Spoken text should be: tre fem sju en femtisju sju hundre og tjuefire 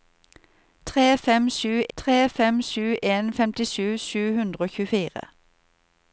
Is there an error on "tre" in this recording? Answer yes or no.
no